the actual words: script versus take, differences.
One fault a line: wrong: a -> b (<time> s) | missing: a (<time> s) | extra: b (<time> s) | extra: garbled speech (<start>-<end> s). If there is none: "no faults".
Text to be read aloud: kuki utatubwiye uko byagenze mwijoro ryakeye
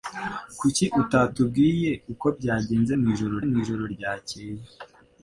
extra: mwijoro (3.5 s)